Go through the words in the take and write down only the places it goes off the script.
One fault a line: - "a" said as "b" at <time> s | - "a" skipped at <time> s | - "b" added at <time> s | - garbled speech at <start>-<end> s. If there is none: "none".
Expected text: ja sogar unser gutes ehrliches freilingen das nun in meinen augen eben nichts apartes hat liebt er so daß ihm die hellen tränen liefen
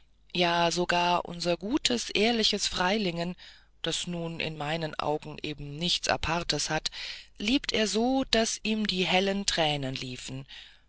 none